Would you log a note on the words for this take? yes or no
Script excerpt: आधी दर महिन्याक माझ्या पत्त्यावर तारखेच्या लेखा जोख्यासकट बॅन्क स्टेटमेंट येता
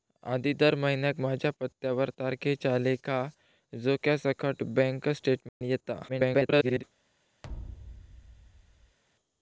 yes